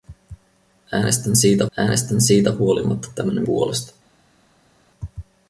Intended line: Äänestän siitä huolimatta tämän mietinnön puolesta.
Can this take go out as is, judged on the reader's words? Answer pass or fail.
fail